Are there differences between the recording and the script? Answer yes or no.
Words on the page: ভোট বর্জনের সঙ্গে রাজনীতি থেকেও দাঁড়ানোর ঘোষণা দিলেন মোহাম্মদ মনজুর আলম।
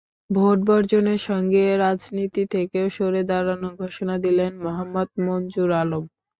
yes